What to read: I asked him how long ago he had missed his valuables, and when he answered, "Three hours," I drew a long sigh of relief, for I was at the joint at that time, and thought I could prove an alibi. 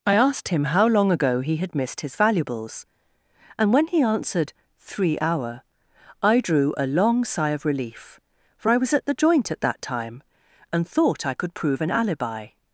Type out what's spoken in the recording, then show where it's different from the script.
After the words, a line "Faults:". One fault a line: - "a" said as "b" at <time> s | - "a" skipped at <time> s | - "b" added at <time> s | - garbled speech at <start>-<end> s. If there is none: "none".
I asked him how long ago he had missed his valuables, and when he answered, "Three hour," I drew a long sigh of relief, for I was at the joint at that time, and thought I could prove an alibi.
Faults:
- "hours" said as "hour" at 5.2 s